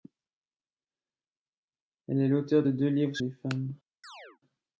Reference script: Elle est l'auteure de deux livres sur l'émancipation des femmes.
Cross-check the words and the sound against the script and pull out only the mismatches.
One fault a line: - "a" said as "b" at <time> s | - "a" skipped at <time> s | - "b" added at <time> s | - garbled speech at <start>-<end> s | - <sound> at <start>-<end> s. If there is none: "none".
- "sur l'émancipation" skipped at 3.2 s
- chirp at 4.0-4.4 s